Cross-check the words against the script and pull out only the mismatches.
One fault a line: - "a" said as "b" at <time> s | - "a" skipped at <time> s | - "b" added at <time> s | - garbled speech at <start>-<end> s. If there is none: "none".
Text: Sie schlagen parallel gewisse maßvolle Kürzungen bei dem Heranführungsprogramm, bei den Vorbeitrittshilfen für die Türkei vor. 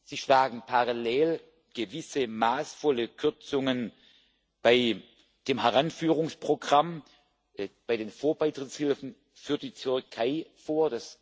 none